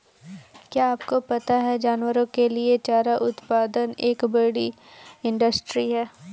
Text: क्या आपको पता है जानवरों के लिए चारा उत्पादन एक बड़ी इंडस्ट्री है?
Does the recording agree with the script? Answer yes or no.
yes